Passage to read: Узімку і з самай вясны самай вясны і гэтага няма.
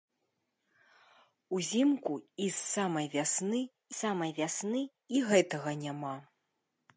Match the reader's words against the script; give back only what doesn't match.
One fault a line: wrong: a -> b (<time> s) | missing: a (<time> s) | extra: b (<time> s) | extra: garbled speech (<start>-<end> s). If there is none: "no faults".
no faults